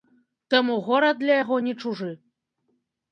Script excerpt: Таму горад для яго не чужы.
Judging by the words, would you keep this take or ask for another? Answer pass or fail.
pass